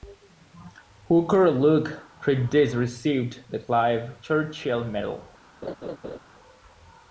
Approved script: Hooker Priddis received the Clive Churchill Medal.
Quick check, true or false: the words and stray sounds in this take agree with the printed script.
false